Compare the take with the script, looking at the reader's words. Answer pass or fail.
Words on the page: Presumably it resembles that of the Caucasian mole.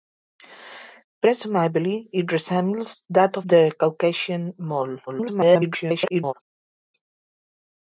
fail